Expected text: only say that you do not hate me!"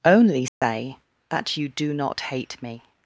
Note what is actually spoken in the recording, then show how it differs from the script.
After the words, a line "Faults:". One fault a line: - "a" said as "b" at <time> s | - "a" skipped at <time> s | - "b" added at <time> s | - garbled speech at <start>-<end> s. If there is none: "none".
only say that you do not hate me!"
Faults:
none